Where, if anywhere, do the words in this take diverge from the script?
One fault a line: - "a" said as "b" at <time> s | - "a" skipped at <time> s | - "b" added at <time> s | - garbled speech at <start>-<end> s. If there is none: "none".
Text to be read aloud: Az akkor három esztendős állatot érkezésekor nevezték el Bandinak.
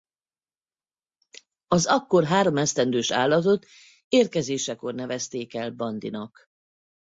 none